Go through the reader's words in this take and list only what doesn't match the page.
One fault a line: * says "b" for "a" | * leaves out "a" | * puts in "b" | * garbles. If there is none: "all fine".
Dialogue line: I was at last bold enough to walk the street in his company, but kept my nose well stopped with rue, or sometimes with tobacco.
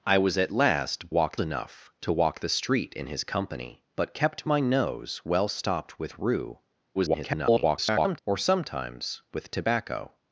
* says "walk" for "bold"
* garbles